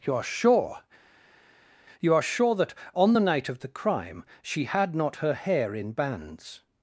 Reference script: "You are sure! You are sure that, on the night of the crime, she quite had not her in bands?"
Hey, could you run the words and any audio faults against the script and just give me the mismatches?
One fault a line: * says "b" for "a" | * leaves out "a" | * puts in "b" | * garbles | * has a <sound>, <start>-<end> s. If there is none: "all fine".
* leaves out "quite"
* puts in "hair"